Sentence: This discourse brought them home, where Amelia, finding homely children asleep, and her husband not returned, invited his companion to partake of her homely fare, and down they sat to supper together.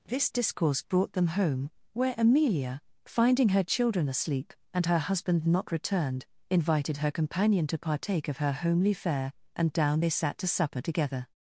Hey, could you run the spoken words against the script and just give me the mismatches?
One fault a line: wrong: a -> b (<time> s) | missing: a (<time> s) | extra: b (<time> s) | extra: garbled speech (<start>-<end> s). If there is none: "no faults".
wrong: homely -> her (3.5 s)
wrong: his -> her (7.0 s)